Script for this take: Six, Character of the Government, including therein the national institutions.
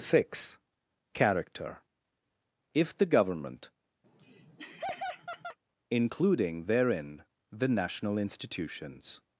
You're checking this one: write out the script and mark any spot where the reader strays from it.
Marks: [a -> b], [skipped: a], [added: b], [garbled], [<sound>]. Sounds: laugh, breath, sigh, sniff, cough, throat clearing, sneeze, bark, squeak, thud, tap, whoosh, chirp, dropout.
Six, Character [of -> if] the Government, [laugh] including therein the national institutions.